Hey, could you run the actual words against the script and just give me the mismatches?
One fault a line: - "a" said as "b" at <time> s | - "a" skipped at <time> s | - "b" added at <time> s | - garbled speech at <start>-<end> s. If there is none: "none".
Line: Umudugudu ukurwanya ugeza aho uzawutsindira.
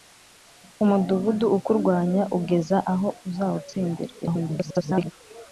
- garbled speech at 4.2-5.1 s